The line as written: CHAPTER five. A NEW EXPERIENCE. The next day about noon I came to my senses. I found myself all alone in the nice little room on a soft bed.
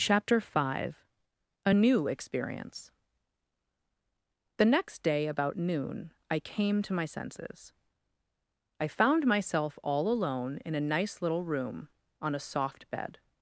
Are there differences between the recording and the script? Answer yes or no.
yes